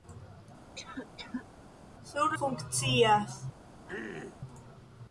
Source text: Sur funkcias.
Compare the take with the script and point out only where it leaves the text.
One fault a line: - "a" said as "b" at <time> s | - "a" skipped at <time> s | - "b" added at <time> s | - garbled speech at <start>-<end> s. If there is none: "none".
none